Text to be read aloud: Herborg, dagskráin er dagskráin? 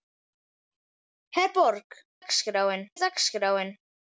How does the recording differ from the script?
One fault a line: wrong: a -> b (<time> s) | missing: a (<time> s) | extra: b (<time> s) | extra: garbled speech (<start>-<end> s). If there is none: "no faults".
no faults